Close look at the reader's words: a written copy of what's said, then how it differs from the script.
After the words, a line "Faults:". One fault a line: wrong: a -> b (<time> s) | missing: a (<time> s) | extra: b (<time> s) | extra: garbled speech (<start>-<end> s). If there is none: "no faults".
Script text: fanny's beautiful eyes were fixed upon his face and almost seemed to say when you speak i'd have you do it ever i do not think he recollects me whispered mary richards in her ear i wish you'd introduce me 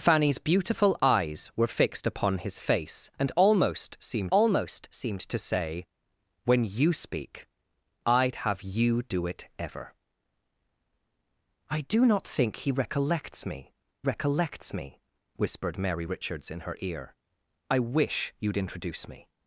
fanny's beautiful eyes were fixed upon his face and almost seemed almost seemed to say when you speak i'd have you do it ever i do not think he recollects me recollects me whispered mary richards in her ear i wish you'd introduce me
Faults:
extra: almost seemed (4.3 s)
extra: recollects me (14.0 s)